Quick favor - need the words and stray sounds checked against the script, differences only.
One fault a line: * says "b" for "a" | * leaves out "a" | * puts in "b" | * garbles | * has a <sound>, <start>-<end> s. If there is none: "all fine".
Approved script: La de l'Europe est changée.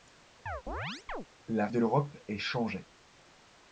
* has a chirp, 0.5-1.3 s